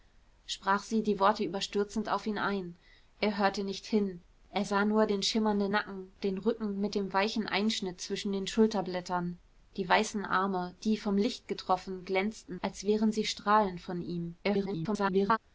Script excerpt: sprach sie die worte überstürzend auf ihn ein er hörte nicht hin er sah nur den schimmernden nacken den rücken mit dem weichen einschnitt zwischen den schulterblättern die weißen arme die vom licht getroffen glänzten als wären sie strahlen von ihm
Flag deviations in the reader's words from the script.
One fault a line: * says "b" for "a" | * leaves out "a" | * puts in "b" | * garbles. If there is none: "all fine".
* garbles